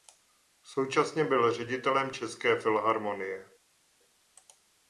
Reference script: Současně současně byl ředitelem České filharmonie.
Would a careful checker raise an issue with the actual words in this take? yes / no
yes